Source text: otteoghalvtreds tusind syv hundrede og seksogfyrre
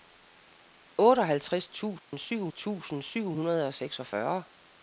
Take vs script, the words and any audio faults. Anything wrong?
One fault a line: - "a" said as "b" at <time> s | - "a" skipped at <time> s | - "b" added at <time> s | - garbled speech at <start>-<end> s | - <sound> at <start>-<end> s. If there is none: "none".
- dropout at 2.0-2.1 s
- "tusind syv" added at 2.5 s